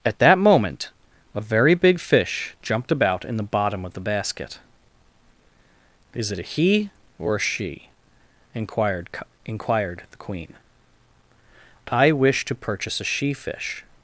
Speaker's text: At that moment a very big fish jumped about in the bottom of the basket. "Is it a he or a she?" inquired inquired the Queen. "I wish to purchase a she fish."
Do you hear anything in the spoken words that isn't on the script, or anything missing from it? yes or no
no